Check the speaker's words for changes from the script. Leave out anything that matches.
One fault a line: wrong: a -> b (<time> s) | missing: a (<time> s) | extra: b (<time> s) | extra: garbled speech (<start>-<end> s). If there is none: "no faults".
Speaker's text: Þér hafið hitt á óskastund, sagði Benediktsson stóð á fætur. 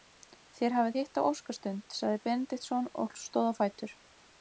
extra: og (3.0 s)